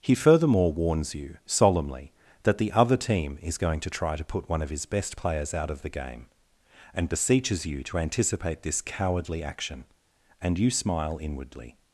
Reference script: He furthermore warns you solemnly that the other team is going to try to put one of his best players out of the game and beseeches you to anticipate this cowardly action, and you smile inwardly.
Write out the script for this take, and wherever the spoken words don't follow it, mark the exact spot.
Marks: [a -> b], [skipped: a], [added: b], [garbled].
He furthermore warns you solemnly that the other team is going to try to put one of his best players out of the game and beseeches you to anticipate this cowardly action, and you smile inwardly.